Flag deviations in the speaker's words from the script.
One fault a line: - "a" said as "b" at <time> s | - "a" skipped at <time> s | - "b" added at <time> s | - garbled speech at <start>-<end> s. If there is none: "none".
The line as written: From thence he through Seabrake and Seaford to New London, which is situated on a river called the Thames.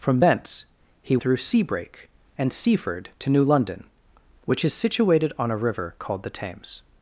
none